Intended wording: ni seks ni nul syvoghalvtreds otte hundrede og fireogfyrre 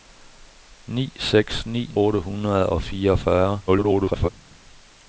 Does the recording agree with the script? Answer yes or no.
no